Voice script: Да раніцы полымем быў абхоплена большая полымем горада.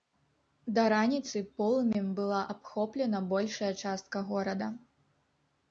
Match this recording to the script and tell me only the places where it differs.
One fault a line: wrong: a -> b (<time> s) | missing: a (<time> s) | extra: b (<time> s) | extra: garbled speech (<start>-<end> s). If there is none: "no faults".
wrong: быў -> была (2.2 s)
wrong: полымем -> частка (3.9 s)